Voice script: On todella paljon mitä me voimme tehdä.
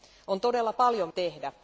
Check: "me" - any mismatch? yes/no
yes